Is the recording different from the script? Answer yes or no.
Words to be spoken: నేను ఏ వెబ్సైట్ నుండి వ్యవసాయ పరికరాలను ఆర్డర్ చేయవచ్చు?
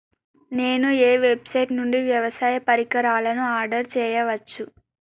no